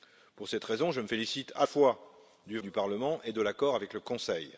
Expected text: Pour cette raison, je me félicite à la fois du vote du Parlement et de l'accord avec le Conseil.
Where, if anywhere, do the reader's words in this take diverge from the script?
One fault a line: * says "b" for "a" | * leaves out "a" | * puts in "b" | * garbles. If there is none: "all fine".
* leaves out "la"
* leaves out "vote"